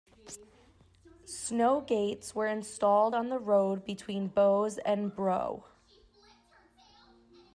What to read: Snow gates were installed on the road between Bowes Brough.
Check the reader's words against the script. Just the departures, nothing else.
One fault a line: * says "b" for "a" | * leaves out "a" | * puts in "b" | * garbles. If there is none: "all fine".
* puts in "and"